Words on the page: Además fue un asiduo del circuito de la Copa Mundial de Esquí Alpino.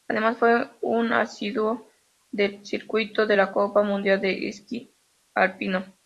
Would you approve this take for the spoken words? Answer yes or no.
yes